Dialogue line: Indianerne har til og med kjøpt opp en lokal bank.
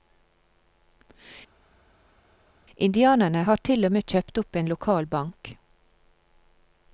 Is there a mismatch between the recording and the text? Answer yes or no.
no